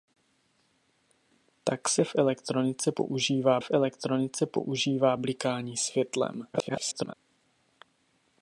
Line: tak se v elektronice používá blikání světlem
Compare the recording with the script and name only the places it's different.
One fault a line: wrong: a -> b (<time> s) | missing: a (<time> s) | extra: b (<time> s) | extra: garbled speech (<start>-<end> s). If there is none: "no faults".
extra: v elektronice používá (3.6 s)
extra: garbled speech (6.5-7.1 s)